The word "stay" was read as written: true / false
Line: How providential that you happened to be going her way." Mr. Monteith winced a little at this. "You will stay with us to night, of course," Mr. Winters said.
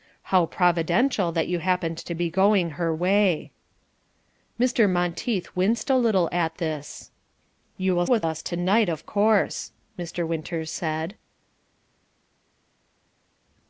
false